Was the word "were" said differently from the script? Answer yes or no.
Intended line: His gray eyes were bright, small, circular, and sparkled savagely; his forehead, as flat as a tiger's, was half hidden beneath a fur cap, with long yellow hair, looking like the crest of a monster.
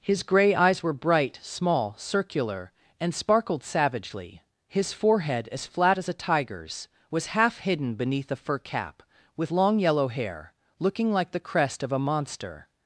no